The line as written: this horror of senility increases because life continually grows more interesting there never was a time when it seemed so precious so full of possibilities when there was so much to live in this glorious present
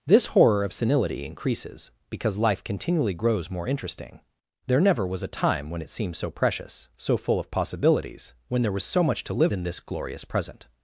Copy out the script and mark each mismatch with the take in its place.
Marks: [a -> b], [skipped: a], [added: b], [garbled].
this horror of senility increases because life continually grows more interesting there never was a time when it seemed so precious so full of possibilities when there was so much to live in this glorious present